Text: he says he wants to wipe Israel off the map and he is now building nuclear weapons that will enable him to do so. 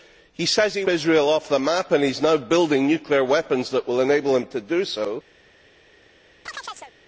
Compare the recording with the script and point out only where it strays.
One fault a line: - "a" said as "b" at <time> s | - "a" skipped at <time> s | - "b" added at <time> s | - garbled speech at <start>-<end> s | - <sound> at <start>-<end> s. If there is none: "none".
- "wants to wipe" skipped at 0.8 s
- chirp at 6.5-6.9 s